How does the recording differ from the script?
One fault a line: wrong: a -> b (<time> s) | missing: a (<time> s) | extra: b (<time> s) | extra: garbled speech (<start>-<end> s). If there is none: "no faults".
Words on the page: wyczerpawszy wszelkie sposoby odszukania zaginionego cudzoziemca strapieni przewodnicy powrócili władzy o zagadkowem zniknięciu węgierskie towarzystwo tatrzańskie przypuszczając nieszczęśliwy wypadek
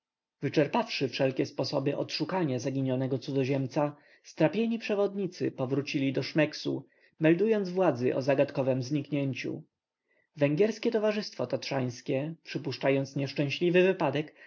extra: do szmeksu meldując (6.1 s)